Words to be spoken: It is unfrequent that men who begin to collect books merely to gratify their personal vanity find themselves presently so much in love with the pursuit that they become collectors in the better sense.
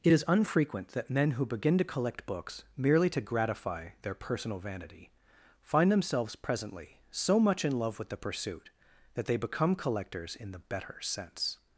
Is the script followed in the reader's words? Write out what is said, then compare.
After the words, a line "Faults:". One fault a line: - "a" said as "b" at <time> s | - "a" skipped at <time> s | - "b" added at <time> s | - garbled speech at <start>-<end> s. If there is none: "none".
It is unfrequent that men who begin to collect books merely to gratify their personal vanity find themselves presently so much in love with the pursuit that they become collectors in the better sense.
Faults:
none